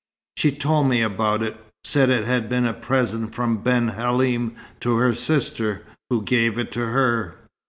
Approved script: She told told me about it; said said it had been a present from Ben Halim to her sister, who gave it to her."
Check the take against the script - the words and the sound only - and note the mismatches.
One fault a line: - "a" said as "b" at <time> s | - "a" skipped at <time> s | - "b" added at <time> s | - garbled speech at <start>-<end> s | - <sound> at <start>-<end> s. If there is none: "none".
- "told" skipped at 0.9 s
- "said" skipped at 2.1 s